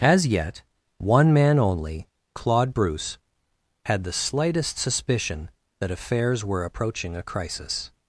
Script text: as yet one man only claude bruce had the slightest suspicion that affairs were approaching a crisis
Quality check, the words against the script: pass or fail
pass